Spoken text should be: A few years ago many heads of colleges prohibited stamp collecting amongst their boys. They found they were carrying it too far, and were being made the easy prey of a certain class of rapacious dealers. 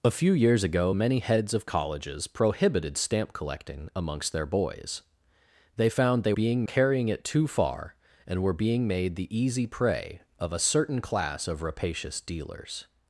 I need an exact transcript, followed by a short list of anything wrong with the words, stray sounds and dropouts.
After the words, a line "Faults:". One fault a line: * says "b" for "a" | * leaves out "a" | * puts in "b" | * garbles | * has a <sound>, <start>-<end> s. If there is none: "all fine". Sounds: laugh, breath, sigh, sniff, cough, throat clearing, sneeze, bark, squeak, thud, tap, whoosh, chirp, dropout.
A few years ago many heads of colleges prohibited stamp collecting amongst their boys. They found they being carrying it too far, and were being made the easy prey of a certain class of rapacious dealers.
Faults:
* says "being" for "were"